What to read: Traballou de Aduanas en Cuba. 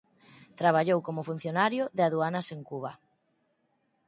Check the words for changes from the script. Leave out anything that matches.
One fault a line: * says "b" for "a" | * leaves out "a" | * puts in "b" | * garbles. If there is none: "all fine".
* puts in "como funcionario"